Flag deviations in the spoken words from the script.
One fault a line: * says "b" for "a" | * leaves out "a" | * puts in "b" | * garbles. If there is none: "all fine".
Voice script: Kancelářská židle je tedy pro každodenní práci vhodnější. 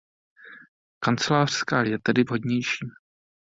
* leaves out "židle"
* leaves out "pro každodenní práci"